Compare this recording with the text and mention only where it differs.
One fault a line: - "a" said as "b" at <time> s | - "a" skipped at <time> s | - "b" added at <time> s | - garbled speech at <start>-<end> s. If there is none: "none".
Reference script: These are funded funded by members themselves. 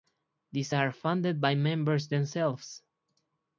- "funded" skipped at 1.4 s